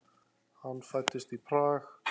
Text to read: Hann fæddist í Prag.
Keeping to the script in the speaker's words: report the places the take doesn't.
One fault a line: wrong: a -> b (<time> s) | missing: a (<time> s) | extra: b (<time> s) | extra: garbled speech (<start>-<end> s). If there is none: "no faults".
no faults